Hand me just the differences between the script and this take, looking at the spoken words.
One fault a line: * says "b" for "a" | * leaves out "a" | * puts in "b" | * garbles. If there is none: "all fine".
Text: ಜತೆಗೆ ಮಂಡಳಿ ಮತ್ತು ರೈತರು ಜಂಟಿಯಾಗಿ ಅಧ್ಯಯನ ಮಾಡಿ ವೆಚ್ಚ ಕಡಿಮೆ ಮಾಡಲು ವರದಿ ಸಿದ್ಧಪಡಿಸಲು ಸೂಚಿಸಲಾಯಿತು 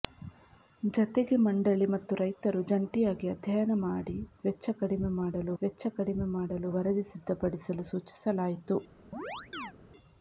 * puts in "ವೆಚ್ಚ ಕಡಿಮೆ ಮಾಡಲು"